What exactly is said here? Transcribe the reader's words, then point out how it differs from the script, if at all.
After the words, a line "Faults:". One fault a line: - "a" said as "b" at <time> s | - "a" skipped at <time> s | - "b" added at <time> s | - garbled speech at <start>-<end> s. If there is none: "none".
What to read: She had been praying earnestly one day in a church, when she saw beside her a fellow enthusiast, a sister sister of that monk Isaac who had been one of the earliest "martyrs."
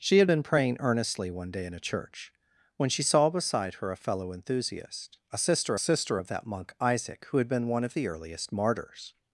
She had been praying earnestly one day in a church, when she saw beside her a fellow enthusiast, a sister sister of that monk Isaac who had been one of the earliest "martyrs."
Faults:
none